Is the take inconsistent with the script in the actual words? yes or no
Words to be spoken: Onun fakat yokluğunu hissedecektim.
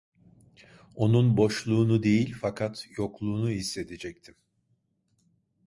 yes